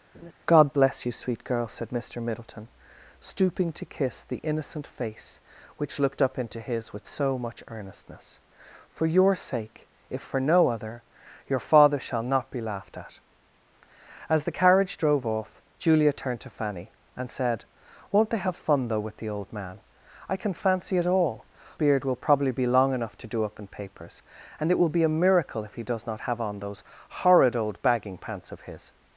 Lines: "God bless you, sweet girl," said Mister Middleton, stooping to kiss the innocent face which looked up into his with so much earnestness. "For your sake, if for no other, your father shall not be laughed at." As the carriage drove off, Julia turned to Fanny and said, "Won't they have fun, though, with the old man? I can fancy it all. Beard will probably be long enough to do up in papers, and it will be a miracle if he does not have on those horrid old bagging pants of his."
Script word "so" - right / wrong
right